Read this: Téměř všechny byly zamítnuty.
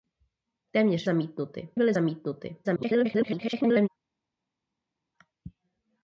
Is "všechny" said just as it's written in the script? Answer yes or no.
no